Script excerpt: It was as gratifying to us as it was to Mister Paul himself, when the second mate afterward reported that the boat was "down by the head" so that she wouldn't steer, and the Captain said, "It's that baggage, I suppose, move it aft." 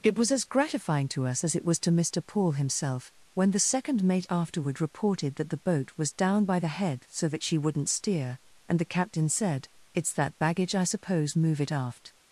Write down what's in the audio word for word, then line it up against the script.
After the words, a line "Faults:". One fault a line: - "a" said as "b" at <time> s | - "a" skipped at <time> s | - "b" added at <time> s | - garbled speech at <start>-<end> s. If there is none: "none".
It was as gratifying to us as it was to Mister Paul himself, when the second mate afterward reported that the boat was "down by the head" so that she wouldn't steer, and the Captain said, "It's that baggage, I suppose, move it aft."
Faults:
none